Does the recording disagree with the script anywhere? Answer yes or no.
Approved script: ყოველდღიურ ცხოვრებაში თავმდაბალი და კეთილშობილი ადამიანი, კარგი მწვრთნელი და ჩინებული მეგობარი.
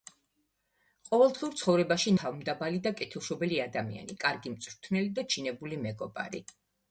no